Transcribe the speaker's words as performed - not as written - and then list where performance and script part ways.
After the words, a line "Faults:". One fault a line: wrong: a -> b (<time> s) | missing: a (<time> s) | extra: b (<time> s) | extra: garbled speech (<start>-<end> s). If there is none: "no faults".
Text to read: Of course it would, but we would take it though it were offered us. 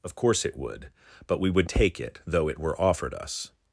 Of course it would, but we would take it though it were offered us.
Faults:
no faults